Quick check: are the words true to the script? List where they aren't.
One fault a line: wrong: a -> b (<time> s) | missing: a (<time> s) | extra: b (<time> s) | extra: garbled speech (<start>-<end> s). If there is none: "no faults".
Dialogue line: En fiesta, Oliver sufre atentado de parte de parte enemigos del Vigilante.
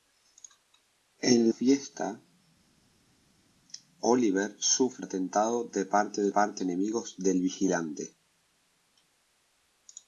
no faults